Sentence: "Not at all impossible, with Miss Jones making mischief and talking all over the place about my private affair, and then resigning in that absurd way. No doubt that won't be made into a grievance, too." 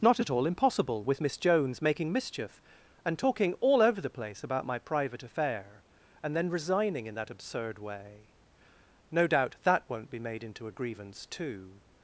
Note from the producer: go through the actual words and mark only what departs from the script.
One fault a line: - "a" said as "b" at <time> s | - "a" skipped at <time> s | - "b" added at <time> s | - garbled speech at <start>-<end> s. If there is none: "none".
none